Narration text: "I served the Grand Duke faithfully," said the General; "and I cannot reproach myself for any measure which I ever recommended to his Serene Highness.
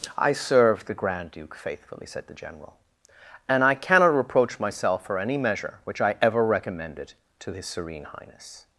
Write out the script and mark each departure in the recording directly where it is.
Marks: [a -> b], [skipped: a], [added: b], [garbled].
"I served the Grand Duke faithfully," said the General; "and I cannot reproach myself for any measure which I ever recommended to his Serene Highness.